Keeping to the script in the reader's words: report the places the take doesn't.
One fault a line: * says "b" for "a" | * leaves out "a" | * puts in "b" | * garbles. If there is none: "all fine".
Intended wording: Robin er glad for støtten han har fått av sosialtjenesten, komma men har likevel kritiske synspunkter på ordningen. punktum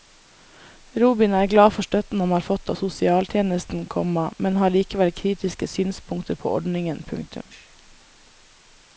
all fine